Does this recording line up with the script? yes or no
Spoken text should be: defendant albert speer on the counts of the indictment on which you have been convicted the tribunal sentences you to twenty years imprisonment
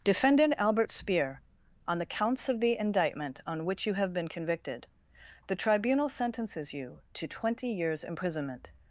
yes